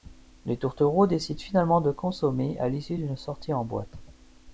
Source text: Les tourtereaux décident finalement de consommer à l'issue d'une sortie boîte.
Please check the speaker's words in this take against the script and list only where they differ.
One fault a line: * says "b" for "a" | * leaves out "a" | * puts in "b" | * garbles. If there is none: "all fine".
* puts in "en"